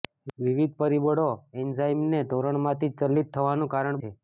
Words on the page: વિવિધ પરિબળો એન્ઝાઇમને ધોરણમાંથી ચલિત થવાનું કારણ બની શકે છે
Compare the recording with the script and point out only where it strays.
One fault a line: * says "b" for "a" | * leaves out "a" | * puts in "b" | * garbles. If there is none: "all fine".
* leaves out "બની શકે"